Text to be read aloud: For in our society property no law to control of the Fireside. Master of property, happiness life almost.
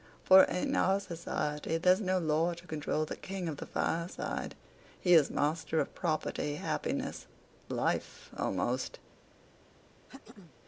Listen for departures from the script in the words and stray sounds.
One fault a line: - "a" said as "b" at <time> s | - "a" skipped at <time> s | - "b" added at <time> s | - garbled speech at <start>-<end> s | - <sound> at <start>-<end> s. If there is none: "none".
- "property" said as "there's" at 1.8 s
- "the King" added at 3.0 s
- "He is" added at 5.0 s
- throat clearing at 10.1-10.5 s